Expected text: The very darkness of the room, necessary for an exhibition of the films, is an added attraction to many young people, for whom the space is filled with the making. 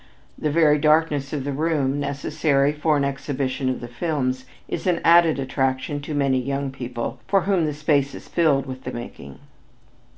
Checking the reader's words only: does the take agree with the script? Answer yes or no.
yes